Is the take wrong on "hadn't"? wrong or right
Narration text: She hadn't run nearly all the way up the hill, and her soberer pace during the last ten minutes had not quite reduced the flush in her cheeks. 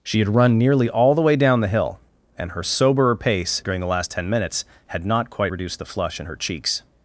wrong